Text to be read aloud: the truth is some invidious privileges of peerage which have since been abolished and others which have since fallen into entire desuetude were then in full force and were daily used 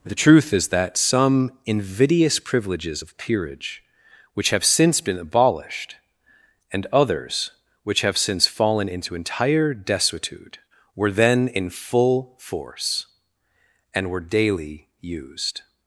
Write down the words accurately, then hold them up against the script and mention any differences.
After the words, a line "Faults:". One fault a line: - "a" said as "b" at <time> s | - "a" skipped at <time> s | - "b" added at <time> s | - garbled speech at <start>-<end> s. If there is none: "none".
the truth is that some invidious privileges of peerage which have since been abolished and others which have since fallen into entire desuetude were then in full force and were daily used
Faults:
- "that" added at 0.7 s